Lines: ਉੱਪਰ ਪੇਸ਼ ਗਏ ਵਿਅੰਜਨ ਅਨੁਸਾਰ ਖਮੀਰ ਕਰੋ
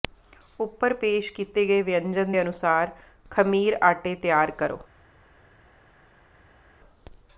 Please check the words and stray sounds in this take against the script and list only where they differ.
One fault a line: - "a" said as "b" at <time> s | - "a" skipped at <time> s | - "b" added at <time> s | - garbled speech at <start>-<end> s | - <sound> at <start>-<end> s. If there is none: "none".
- "ਕੀਤੇ" added at 1.3 s
- "ਦੇ" added at 2.3 s
- "ਆਟੇ ਤਿਆਰ" added at 3.8 s